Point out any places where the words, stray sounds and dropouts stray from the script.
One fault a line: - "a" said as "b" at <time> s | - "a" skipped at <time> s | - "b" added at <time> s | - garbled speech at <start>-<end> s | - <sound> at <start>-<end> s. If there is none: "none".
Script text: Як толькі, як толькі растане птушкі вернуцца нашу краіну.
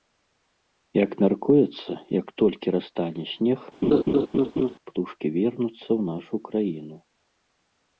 - "толькі" said as "мяркуецца" at 1.2 s
- "снег" added at 3.3 s
- laugh at 3.8-4.7 s
- "ў" added at 5.8 s